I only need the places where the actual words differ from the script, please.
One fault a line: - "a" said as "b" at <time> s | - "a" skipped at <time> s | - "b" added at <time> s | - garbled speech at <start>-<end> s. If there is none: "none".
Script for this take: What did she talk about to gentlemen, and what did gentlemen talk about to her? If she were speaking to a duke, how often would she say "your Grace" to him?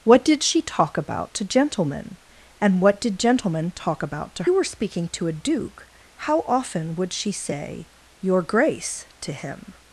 - "her If she" skipped at 4.4 s